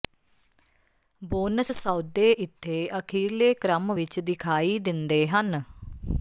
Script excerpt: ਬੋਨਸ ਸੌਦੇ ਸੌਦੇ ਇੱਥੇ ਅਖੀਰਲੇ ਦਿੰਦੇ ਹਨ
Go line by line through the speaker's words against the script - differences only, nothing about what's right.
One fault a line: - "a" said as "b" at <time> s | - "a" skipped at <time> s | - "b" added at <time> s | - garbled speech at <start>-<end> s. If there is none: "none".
- "ਸੌਦੇ" skipped at 2.3 s
- "ਕ੍ਰਮ ਵਿੱਚ ਦਿਖਾਈ" added at 3.5 s